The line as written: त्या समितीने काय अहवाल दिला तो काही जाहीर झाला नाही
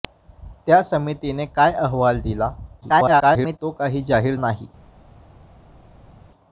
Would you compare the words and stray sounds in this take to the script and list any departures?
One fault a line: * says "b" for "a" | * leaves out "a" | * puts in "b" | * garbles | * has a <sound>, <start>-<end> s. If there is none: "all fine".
* garbles
* leaves out "झाला"